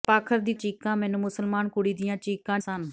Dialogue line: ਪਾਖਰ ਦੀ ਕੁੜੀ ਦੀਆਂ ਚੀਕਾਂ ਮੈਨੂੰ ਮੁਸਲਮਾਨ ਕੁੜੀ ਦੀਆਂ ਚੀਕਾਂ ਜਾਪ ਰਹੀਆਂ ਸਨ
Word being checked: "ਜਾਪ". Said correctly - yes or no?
no